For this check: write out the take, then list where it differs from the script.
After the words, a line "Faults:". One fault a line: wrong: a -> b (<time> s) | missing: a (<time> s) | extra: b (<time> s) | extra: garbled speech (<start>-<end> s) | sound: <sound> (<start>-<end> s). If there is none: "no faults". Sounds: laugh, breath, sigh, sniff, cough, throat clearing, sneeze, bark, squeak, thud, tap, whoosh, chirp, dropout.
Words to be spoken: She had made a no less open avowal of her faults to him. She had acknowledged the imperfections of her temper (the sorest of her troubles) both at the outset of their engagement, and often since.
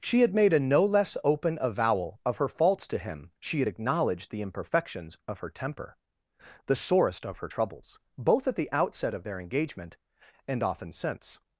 She had made a no less open avowal of her faults to him. She had acknowledged the imperfections of her temper (the sorest of her troubles) both at the outset of their engagement, and often since.
Faults:
no faults